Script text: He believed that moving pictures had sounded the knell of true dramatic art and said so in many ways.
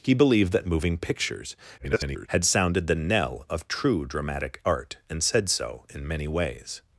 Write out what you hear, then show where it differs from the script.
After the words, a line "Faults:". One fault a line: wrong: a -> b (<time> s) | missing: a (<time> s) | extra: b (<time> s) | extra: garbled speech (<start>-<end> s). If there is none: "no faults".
He believed that moving pictures [garbled] had sounded the knell of true dramatic art and said so in many ways.
Faults:
extra: garbled speech (1.8-2.3 s)